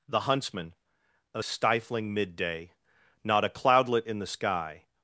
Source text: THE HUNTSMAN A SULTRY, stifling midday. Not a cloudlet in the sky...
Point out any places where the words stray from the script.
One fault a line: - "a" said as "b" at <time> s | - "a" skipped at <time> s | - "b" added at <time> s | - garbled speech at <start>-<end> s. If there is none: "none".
- "SULTRY" skipped at 1.4 s